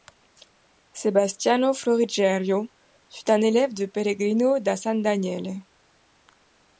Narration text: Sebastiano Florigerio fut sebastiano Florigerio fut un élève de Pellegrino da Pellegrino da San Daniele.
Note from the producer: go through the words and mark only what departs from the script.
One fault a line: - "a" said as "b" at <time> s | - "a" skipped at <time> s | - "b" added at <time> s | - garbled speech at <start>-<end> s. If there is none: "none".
- "sebastiano Florigerio fut" skipped at 3.3 s
- "Pellegrino da" skipped at 4.8 s